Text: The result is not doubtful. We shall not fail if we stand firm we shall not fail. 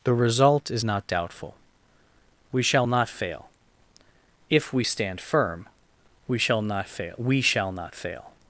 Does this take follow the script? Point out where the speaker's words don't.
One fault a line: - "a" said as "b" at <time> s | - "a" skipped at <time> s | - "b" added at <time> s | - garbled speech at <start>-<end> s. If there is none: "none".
- "we shall not fail" added at 7.2 s